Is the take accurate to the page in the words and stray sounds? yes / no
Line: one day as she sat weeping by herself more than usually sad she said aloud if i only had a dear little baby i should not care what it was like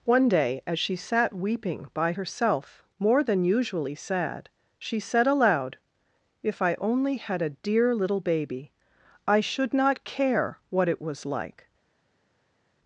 yes